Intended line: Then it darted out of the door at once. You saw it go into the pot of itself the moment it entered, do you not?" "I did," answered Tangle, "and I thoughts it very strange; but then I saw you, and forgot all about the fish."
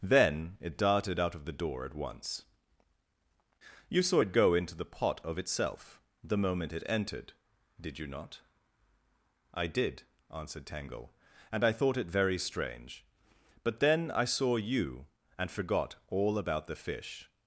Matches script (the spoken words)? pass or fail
fail